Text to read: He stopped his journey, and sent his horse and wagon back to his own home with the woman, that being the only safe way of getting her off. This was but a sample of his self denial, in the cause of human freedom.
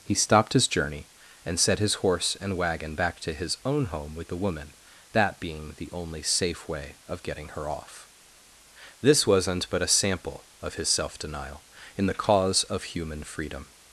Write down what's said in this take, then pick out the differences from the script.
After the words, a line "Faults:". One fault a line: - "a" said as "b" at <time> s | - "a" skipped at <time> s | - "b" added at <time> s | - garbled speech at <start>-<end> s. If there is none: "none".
He stopped his journey, and set his horse and wagon back to his own home with the woman, that being the only safe way of getting her off. This wasn't but a sample of his self denial, in the cause of human freedom.
Faults:
- "sent" said as "set" at 1.6 s
- "was" said as "wasn't" at 9.3 s